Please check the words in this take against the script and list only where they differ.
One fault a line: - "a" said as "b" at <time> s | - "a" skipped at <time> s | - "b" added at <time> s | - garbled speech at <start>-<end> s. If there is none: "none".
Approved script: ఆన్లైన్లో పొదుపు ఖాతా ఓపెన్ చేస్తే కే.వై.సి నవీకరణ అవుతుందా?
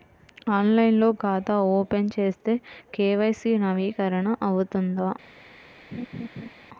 - "పొదుపు" skipped at 1.1 s